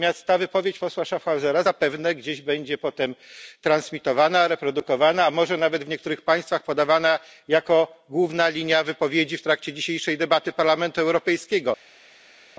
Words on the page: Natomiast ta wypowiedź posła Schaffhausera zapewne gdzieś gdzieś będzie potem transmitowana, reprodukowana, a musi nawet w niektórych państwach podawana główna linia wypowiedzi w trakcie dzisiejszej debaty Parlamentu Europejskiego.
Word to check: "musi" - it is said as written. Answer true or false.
false